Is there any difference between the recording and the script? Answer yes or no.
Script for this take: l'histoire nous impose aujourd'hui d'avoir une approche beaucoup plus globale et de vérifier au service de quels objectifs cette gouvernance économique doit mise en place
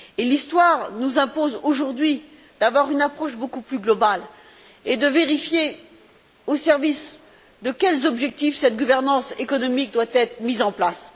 yes